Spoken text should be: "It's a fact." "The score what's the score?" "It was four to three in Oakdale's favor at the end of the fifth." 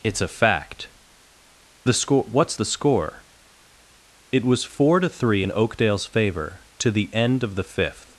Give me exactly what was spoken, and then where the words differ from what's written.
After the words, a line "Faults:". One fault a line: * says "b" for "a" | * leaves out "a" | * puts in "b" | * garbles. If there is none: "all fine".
"It's a fact." "The score what's the score?" "It was four to three in Oakdale's favor to the end of the fifth."
Faults:
* says "to" for "at"